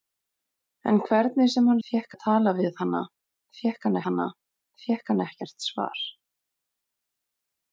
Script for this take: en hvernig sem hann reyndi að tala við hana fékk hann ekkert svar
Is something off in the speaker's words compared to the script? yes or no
yes